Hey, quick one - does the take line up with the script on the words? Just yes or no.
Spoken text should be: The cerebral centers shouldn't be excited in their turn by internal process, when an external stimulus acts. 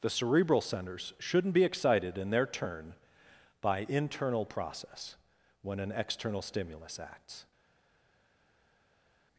yes